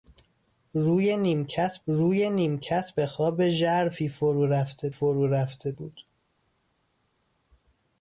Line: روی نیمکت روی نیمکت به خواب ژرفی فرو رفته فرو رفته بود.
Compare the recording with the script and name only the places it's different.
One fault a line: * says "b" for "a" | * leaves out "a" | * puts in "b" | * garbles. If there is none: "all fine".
all fine